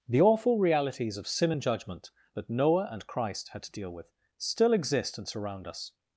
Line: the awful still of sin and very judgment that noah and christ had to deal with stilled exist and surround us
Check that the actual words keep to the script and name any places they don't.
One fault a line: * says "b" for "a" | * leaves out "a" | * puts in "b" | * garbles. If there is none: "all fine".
* says "realities" for "still"
* leaves out "very"
* says "still" for "stilled"